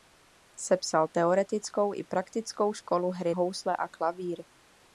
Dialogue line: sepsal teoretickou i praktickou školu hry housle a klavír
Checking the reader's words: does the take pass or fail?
pass